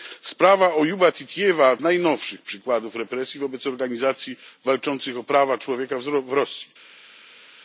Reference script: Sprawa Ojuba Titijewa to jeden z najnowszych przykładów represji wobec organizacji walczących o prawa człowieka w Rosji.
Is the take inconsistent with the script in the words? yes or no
yes